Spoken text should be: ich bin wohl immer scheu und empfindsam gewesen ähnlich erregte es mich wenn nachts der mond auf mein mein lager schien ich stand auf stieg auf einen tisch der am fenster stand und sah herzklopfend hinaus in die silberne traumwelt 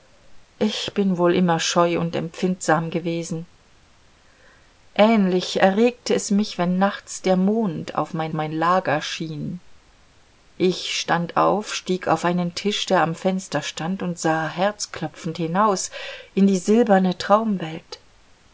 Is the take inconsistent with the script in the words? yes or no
no